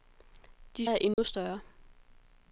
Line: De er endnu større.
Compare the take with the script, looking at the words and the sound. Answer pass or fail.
fail